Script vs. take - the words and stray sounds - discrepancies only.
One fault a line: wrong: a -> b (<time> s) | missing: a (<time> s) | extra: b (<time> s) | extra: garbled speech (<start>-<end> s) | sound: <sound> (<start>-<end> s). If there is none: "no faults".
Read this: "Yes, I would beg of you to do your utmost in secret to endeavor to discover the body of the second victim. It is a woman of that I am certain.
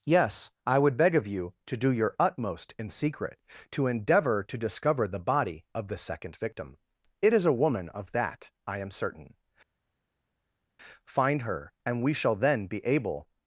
extra: Find her and we shall then be able (11.1 s)